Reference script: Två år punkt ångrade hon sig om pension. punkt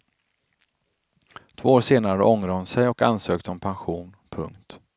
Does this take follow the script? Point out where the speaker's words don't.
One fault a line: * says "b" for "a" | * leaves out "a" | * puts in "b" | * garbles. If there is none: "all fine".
* says "senare" for "punkt"
* puts in "och ansökte"